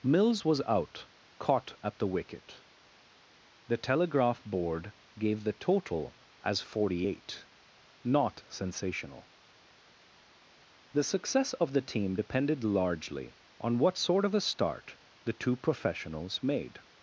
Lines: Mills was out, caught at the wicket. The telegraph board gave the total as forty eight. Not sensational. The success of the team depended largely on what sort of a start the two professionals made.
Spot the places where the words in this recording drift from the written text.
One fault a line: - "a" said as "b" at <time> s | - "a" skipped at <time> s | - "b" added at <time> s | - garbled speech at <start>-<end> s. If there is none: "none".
none